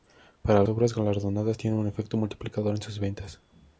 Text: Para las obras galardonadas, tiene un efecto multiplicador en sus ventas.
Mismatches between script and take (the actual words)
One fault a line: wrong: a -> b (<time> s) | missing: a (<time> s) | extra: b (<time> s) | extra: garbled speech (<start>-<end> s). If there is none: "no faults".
missing: las (0.6 s)